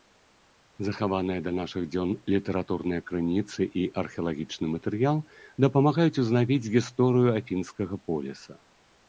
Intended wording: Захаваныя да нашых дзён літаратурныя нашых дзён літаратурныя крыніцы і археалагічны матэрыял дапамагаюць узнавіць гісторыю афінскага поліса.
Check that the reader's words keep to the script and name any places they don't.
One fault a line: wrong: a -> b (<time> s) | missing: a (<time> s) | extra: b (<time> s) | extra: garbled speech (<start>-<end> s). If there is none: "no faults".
missing: нашых дзён літаратурныя (3.0 s)